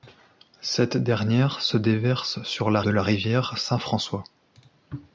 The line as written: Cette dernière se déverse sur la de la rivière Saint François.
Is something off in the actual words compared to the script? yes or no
no